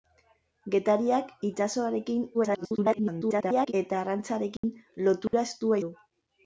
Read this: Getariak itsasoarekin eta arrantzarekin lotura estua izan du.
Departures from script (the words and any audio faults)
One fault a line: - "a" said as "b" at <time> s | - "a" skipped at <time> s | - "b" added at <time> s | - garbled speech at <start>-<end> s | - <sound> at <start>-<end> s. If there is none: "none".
- garbled speech at 2.3-3.7 s
- dropout at 4.6-4.6 s
- dropout at 5.3-5.3 s
- "izan" skipped at 5.8 s